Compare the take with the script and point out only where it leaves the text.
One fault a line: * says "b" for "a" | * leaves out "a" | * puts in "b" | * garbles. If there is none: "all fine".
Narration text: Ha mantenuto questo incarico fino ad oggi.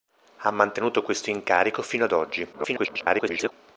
* garbles